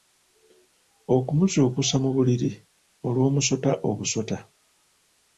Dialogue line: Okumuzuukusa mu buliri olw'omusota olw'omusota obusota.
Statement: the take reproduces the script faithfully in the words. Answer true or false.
false